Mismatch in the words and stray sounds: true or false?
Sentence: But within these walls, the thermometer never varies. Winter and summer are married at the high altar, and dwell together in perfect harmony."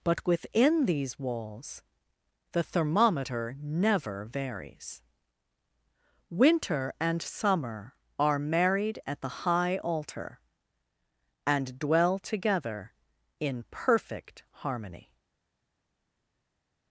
false